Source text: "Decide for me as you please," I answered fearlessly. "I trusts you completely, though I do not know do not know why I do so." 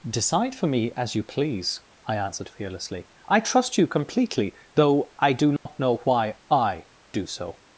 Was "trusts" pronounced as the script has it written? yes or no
no